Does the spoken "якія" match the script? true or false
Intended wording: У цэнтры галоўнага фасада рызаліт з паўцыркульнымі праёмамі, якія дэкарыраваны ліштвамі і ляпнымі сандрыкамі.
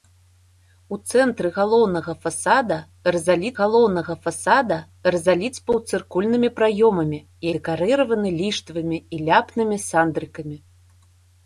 false